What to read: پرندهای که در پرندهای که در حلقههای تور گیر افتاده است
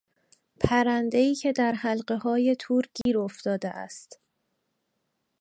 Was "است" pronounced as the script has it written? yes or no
yes